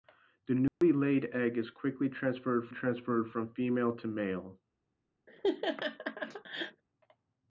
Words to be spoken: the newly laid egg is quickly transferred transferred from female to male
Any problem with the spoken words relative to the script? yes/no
no